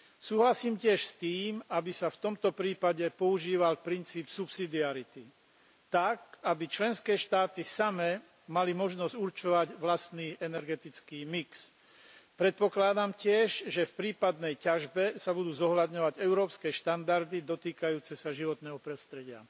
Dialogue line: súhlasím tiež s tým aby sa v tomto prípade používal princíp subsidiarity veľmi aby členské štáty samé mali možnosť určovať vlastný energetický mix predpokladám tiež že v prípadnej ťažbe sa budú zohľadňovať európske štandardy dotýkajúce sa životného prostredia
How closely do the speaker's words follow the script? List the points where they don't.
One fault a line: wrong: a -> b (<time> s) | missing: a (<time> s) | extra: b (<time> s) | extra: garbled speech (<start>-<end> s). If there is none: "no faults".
wrong: veľmi -> tak (5.9 s)